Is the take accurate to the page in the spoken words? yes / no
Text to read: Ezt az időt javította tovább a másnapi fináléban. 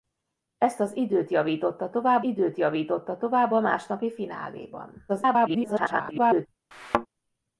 no